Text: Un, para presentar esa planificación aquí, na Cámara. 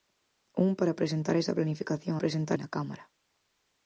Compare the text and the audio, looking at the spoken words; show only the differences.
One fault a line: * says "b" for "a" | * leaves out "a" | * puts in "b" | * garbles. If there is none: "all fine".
* says "presentar" for "aquí"